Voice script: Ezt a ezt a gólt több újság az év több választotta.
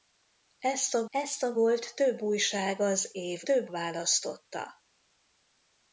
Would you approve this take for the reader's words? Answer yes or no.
yes